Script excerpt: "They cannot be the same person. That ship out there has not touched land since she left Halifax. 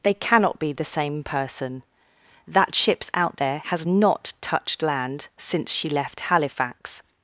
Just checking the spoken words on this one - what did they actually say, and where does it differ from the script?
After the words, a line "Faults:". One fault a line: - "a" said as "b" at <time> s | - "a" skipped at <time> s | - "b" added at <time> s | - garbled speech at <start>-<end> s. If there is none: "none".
"They cannot be the same person. That ships out there has not touched land since she left Halifax.
Faults:
- "ship" said as "ships" at 2.8 s